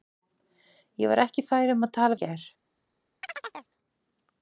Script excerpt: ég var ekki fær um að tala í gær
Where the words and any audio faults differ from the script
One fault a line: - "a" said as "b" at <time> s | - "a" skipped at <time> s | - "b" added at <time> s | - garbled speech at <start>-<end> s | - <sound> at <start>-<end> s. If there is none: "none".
- chirp at 3.2-3.7 s